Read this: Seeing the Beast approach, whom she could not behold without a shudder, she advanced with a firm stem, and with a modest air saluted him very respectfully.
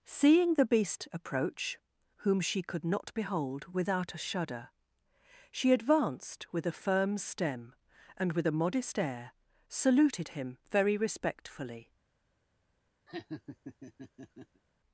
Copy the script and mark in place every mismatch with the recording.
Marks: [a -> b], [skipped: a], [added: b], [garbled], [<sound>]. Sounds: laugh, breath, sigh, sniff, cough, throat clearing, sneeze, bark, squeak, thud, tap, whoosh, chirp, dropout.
Seeing the Beast approach, whom she could not behold without a shudder, she advanced with a firm stem, and with a modest air saluted him very respectfully. [laugh]